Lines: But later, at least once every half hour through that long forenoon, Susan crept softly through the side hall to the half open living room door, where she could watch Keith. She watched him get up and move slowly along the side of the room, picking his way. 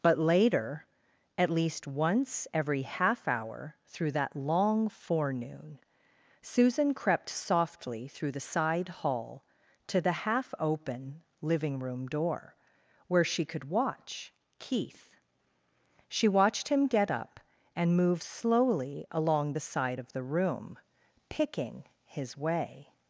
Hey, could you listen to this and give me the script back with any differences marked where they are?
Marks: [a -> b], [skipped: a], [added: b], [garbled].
But later, at least once every half hour through that long forenoon, Susan crept softly through the side hall to the half open living room door, where she could watch Keith. She watched him get up and move slowly along the side of the room, picking his way.